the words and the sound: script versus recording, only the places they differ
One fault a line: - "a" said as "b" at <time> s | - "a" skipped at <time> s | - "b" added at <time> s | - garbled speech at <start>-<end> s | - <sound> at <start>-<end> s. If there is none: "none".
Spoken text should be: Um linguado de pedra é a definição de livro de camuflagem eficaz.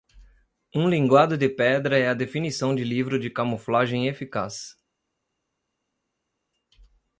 none